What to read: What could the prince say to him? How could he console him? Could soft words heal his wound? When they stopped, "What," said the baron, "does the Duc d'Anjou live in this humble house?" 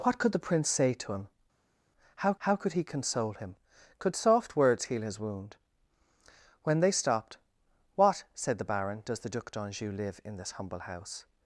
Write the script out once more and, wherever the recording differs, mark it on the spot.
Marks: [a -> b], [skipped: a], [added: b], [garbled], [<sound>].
What could the prince say to him? How [added: how] could he console him? Could soft words heal his wound? When they stopped, "What," said the baron, "does the Duc d'Anjou live in this humble house?"